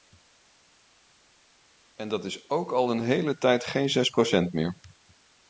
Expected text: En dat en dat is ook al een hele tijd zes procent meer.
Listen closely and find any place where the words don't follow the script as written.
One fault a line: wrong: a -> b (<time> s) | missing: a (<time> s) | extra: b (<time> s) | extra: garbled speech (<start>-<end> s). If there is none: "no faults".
missing: en dat (2.2 s)
extra: geen (3.6 s)